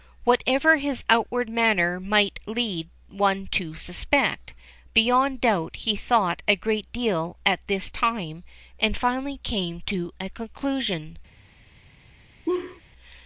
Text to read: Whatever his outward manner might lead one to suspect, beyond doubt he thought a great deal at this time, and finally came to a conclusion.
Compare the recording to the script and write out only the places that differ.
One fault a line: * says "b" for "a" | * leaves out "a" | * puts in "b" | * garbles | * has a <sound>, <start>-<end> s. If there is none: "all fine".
* has a laugh, 12.5-12.8 s